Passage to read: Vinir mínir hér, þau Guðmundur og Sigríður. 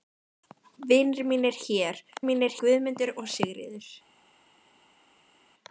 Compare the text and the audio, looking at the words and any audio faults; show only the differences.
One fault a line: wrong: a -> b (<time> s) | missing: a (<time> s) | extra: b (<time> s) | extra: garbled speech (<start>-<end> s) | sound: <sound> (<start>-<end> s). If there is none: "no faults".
wrong: þau -> mínir (2.3 s)